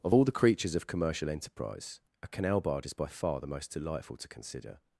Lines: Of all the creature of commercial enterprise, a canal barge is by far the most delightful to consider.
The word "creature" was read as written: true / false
false